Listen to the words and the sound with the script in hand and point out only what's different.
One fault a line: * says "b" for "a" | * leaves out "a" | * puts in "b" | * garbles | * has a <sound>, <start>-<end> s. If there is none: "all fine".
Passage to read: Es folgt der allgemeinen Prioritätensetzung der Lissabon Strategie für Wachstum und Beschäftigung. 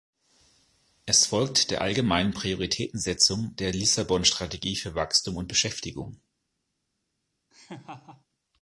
* has a laugh, 7.5-8.3 s